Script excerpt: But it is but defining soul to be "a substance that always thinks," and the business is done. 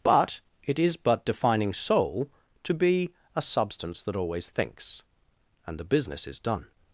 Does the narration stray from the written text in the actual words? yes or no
no